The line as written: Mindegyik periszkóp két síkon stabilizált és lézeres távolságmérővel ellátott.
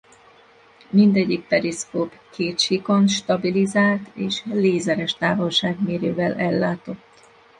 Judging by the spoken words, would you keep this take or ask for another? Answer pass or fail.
pass